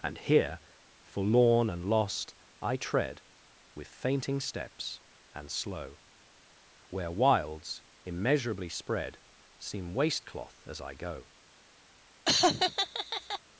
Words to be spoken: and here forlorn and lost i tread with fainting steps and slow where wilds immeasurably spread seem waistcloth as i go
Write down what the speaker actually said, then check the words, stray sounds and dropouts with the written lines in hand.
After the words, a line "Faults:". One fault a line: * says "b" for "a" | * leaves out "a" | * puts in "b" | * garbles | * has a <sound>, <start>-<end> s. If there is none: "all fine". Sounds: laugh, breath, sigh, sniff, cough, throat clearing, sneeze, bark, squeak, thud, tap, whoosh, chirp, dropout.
and here forlorn and lost i tread with fainting steps and slow where wilds immeasurably spread seem waistcloth as i go
Faults:
* has a laugh, 12.3-13.4 s